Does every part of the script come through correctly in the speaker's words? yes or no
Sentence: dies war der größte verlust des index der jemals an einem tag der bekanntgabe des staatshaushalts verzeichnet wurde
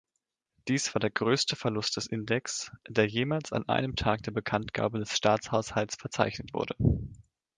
yes